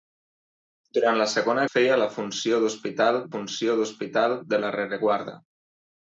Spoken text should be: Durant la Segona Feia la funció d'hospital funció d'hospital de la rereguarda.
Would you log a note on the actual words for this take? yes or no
no